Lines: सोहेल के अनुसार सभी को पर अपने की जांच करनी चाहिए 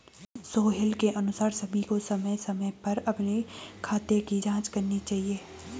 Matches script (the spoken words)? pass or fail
fail